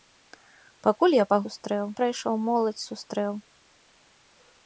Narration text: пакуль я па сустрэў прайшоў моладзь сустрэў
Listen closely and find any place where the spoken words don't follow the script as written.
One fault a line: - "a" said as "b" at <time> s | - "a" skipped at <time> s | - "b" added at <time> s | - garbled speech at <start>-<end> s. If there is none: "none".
none